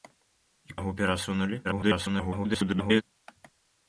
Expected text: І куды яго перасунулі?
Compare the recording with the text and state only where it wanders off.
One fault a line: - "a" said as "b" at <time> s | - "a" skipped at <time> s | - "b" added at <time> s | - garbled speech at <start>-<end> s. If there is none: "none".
- "куды" skipped at 0.8 s
- garbled speech at 1.6-3.0 s